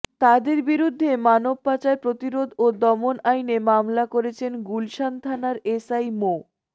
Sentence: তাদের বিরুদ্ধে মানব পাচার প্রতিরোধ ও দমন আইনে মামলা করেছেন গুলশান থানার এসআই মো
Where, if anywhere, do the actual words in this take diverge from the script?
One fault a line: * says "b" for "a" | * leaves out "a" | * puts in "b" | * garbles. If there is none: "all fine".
all fine